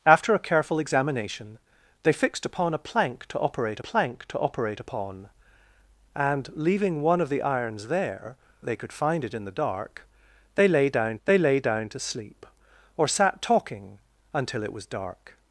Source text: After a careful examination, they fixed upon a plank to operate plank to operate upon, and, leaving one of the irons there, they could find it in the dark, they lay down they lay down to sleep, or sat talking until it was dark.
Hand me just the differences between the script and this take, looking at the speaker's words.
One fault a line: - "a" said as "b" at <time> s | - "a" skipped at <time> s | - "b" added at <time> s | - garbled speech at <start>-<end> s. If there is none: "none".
none